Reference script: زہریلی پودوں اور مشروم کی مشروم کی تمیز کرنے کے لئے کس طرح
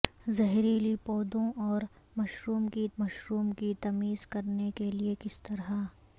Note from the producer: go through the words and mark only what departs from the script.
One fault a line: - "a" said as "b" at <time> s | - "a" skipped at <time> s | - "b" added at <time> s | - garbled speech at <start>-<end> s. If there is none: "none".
none